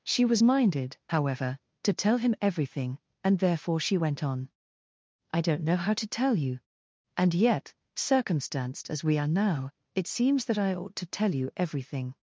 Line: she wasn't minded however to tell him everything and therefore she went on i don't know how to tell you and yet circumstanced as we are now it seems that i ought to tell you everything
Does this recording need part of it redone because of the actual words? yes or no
yes